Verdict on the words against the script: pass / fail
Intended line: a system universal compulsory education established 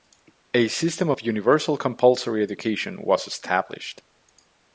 fail